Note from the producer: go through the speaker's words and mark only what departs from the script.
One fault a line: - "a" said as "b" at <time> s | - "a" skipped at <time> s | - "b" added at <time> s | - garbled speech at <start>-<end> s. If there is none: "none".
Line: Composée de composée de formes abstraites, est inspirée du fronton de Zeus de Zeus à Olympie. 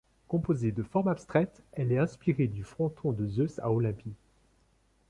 - "composée de" skipped at 0.8 s
- "elle" added at 1.7 s
- "de Zeus" skipped at 3.6 s